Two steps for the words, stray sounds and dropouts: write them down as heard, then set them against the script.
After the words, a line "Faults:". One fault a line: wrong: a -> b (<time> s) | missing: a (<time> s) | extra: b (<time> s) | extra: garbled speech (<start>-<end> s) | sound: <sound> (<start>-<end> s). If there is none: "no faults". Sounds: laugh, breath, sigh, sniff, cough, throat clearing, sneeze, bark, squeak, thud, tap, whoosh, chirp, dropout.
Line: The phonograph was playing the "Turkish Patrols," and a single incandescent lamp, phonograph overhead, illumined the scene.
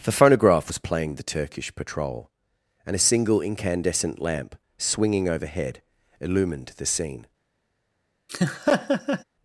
The phonograph was playing the "Turkish Patrol," and a single incandescent lamp, swinging overhead, illumined the scene.
Faults:
wrong: Patrols -> Patrol (1.8 s)
wrong: phonograph -> swinging (4.8 s)
sound: laugh (8.3-9.2 s)